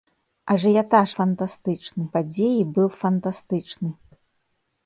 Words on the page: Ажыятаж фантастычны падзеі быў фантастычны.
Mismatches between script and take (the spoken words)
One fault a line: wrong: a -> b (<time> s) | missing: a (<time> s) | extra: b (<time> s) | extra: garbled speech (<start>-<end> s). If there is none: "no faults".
no faults